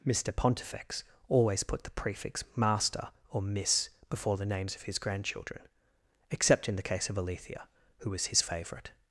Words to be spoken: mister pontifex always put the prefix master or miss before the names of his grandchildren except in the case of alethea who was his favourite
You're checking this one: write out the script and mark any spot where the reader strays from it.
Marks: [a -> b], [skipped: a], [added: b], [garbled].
mister pontifex always put the prefix master or miss before the names of his grandchildren except in the case of alethea who was his favourite